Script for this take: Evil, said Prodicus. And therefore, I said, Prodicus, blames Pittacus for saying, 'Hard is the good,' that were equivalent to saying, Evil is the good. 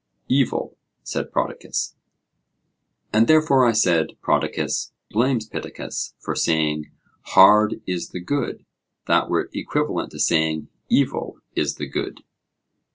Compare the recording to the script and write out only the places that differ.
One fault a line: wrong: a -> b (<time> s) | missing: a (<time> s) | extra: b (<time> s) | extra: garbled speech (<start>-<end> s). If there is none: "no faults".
no faults